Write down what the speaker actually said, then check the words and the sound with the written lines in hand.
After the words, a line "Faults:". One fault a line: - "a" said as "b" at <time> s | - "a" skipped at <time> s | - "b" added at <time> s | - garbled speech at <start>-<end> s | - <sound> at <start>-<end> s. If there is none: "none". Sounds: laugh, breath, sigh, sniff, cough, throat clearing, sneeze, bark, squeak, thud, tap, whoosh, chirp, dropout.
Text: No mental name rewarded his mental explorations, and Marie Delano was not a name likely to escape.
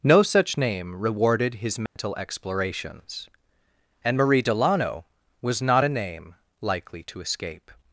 No such name rewarded his mental explorations, and Marie Delano was not a name likely to escape.
Faults:
- "mental" said as "such" at 0.2 s
- dropout at 1.9-2.0 s